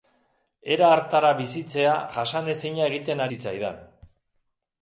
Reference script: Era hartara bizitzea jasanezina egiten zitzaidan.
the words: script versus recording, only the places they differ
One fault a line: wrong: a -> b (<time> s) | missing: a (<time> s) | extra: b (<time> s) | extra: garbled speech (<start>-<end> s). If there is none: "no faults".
no faults